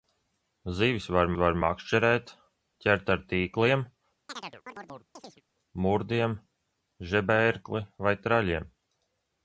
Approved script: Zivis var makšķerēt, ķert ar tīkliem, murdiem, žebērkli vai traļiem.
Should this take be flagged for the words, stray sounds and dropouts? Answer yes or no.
yes